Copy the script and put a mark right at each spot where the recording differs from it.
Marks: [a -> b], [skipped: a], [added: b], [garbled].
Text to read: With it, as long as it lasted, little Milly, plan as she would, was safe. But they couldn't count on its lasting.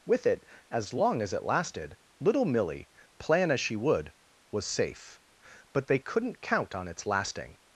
With it, as long as it lasted, little Milly, plan as she would, was safe. But they couldn't count on its lasting.